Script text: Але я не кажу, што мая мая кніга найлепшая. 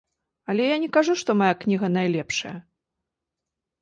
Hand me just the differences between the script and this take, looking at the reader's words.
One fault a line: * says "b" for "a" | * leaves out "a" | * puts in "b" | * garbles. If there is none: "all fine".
* leaves out "мая"